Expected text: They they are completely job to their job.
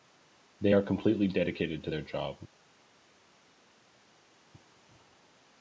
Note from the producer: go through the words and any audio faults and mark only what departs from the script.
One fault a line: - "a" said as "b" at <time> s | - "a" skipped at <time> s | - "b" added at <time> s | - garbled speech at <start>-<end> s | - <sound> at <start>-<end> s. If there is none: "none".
- "they" skipped at 0.8 s
- "job" said as "dedicated" at 1.3 s